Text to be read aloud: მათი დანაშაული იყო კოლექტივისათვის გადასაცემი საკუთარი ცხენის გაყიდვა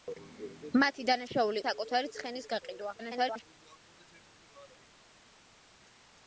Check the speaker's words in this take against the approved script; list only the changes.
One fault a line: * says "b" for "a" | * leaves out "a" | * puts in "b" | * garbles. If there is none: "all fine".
* leaves out "იყო კოლექტივისათვის გადასაცემი"
* garbles